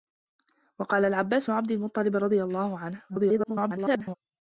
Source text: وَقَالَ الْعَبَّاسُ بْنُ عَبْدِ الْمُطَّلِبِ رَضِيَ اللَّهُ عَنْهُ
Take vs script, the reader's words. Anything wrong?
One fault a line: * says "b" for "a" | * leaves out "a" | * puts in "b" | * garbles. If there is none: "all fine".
* leaves out "بْنُ"
* garbles